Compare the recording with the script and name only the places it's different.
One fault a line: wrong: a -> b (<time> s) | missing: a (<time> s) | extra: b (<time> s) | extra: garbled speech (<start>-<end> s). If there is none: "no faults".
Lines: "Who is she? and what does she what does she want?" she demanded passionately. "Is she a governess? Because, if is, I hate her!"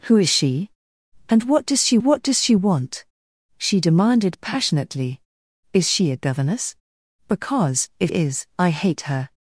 no faults